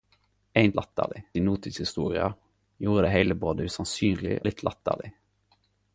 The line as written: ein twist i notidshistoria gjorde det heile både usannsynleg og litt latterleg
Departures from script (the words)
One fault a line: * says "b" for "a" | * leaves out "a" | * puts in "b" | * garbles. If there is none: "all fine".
* says "latterleg" for "twist"
* leaves out "og"